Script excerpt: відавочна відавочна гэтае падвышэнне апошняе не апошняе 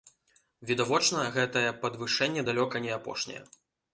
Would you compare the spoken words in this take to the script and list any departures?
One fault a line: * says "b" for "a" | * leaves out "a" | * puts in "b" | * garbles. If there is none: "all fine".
* leaves out "відавочна"
* says "далёка" for "апошняе"